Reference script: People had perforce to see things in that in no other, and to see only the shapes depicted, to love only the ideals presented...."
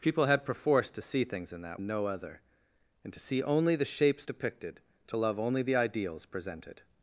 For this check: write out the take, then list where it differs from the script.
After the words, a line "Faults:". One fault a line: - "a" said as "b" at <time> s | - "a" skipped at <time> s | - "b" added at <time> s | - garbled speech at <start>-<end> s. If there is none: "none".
People had perforce to see things in that in no other, and to see only the shapes depicted, to love only the ideals presented...."
Faults:
none